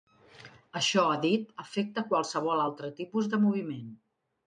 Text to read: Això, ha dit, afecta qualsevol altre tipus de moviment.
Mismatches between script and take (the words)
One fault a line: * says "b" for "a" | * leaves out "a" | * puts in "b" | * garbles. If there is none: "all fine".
all fine